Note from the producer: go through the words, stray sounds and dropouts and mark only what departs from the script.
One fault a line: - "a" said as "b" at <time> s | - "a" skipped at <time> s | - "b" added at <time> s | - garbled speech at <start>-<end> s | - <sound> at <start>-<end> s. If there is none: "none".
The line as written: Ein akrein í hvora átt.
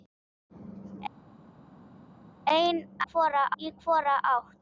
- "akrein" said as "hvora" at 3.1 s